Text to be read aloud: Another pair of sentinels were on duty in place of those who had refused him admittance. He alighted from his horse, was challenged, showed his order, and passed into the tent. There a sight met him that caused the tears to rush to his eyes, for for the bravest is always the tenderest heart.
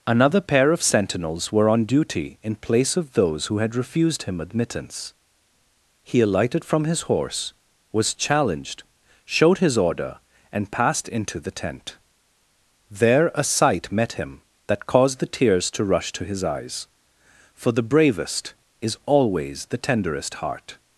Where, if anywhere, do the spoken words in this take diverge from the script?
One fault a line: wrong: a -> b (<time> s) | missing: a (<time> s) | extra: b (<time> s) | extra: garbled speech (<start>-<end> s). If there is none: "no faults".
missing: for (17.7 s)